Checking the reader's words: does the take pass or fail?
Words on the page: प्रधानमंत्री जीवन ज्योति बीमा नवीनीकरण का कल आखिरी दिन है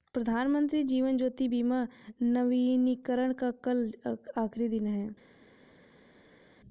pass